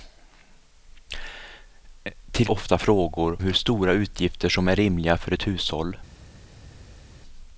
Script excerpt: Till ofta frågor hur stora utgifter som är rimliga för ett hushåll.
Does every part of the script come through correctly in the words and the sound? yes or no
yes